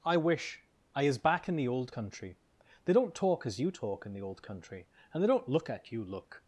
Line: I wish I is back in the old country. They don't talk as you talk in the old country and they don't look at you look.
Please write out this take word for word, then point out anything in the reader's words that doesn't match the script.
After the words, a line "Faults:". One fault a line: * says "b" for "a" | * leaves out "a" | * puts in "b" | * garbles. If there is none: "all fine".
I wish I is back in the old country. They don't talk as you talk in the old country and they don't look at you look.
Faults:
all fine